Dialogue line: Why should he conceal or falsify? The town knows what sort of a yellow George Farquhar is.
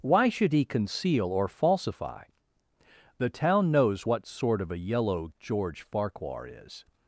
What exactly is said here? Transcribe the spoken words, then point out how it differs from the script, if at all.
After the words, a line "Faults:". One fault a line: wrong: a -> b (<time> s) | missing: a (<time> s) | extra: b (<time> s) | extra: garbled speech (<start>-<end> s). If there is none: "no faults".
Why should he conceal or falsify? The town knows what sort of a yellow George Farquhar is.
Faults:
no faults